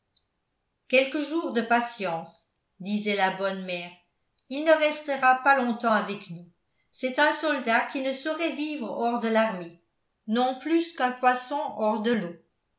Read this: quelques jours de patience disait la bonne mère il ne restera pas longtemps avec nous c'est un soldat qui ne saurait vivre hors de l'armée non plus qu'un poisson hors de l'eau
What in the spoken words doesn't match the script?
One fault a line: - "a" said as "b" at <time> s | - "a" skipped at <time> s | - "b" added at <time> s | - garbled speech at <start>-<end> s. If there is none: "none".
none